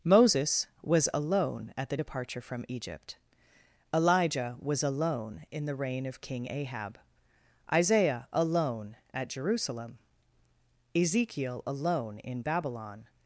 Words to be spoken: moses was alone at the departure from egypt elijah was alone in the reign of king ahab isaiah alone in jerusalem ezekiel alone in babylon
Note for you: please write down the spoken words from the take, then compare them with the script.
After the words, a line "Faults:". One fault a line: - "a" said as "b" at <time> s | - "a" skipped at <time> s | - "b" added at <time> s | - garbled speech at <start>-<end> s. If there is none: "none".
moses was alone at the departure from egypt elijah was alone in the reign of king ahab isaiah alone at jerusalem ezekiel alone in babylon
Faults:
- "in" said as "at" at 9.1 s